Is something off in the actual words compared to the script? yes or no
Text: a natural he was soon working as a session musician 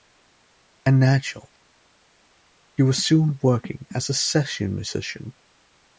no